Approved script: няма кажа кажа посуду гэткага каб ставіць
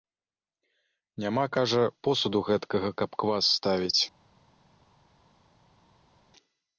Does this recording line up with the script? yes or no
no